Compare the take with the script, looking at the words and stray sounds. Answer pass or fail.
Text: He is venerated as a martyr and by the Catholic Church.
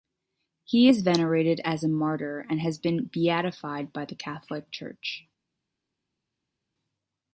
fail